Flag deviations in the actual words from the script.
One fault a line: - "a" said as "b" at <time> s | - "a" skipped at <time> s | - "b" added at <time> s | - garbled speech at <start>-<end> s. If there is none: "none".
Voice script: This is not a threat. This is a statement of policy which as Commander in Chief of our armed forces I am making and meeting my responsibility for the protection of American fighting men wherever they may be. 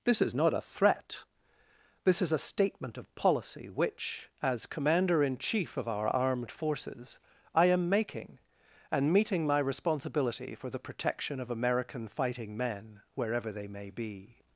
none